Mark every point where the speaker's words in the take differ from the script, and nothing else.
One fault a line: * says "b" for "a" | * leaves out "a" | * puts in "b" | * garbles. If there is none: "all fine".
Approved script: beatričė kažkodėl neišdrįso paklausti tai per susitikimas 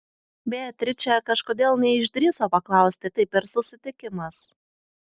all fine